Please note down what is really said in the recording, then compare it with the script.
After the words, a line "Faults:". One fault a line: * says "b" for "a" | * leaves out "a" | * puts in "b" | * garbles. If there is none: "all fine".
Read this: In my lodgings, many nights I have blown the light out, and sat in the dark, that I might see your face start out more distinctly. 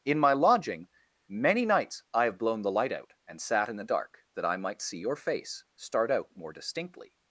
In my lodging, many nights I have blown the light out, and sat in the dark, that I might see your face start out more distinctly.
Faults:
* says "lodging" for "lodgings"